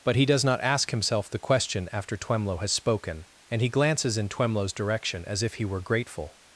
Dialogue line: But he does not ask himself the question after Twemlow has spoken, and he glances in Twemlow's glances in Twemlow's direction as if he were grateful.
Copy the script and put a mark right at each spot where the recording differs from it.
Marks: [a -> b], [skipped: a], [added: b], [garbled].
But he does not ask himself the question after Twemlow has spoken, and he glances in Twemlow's [skipped: glances in Twemlow's] direction as if he were grateful.